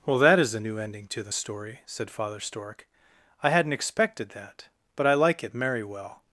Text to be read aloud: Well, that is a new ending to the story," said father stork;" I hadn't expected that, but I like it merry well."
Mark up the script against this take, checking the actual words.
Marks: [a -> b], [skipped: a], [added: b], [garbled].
Well, that is a new ending to the story," said father stork;" I hadn't expected that, but I like it merry well."